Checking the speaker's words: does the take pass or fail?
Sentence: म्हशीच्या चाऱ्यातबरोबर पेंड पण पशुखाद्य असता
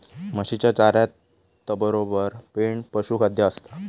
fail